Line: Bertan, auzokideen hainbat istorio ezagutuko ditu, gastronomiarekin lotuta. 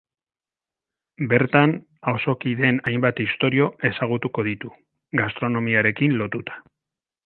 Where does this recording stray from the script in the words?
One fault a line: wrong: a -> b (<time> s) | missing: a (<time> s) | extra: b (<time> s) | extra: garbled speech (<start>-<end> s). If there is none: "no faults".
no faults